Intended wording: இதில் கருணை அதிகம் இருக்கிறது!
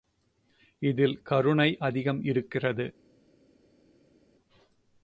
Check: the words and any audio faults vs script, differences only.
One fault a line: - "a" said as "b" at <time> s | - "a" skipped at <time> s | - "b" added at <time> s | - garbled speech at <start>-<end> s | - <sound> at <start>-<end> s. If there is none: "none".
none